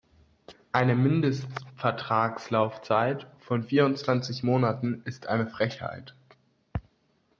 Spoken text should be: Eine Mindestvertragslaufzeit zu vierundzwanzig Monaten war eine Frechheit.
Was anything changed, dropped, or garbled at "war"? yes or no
yes